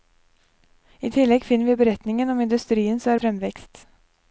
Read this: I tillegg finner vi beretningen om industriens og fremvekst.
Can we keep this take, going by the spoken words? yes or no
yes